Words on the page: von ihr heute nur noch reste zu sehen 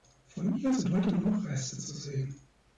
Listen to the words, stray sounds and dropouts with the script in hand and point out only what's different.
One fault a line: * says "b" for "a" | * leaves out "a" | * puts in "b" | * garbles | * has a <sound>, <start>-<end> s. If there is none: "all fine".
* puts in "sind"